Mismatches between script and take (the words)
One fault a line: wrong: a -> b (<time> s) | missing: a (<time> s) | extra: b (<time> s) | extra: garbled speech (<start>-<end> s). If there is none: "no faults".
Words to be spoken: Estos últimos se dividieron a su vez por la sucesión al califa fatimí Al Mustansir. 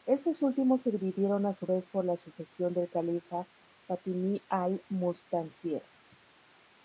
wrong: al -> del (2.7 s)